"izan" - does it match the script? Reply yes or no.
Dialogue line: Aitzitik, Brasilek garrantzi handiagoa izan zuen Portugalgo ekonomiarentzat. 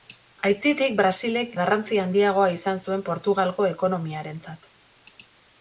yes